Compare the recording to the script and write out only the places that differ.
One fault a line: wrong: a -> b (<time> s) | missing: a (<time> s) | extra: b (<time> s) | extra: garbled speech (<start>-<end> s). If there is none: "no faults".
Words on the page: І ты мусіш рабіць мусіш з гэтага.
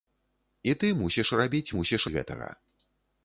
no faults